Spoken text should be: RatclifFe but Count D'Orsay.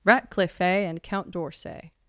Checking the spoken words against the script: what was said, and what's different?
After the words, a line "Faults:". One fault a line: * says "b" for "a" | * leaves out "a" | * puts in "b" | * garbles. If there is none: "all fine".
RatclifFe and Count D'Orsay.
Faults:
* says "and" for "but"